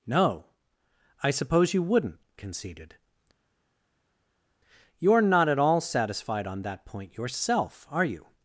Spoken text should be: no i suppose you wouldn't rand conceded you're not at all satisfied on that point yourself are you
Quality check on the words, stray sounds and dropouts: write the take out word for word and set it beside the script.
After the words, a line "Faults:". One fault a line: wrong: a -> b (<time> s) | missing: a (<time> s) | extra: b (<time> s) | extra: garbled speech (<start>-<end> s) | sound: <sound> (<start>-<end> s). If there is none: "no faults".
no i suppose you wouldn't conceded you're not at all satisfied on that point yourself are you
Faults:
missing: rand (2.2 s)